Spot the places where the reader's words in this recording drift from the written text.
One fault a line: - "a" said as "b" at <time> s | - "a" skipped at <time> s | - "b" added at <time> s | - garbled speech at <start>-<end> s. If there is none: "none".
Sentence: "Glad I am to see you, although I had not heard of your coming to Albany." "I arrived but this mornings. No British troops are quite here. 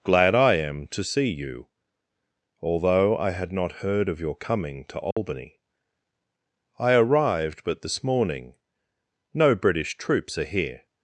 - "mornings" said as "morning" at 8.0 s
- "quite" skipped at 10.5 s